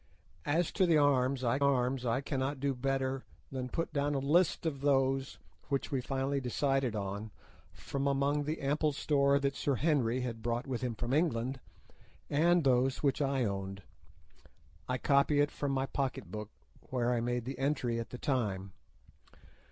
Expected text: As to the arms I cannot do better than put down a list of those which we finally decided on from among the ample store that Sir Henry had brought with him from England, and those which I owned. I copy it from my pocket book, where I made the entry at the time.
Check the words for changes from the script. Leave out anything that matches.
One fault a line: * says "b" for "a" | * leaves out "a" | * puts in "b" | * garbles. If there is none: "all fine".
* puts in "arms I"